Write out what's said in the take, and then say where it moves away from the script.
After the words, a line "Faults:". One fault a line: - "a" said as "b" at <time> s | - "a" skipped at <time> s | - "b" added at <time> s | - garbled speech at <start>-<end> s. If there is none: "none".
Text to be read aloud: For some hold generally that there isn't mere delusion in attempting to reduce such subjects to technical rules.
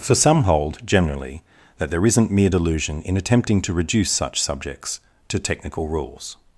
For some hold generally that there isn't mere delusion in attempting to reduce such subjects to technical rules.
Faults:
none